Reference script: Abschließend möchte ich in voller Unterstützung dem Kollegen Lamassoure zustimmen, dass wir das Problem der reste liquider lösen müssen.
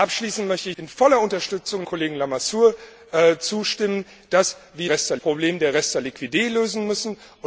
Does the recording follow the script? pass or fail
fail